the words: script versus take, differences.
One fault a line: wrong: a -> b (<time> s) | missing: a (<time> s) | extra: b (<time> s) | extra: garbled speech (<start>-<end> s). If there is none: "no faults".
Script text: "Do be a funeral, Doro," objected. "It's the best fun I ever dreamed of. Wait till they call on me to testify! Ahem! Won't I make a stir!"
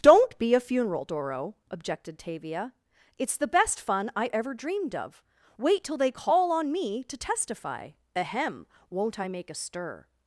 wrong: Do -> Don't (0.0 s)
extra: Tavia (2.2 s)